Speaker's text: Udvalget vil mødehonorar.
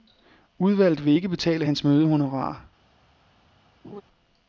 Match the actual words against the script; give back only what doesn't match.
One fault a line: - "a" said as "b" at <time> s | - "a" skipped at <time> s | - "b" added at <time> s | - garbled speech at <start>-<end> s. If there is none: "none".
- "ikke betale hans" added at 1.1 s